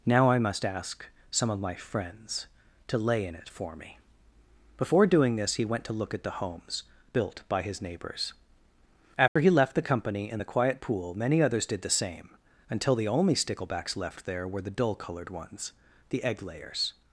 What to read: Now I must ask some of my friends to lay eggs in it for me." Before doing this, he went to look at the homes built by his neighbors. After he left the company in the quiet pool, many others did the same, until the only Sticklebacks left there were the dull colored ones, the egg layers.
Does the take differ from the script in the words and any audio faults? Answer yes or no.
yes